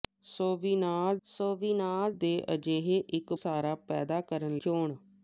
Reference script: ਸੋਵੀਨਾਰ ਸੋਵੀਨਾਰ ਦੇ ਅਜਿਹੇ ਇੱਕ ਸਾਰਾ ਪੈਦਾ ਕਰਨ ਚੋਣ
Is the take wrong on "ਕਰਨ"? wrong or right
right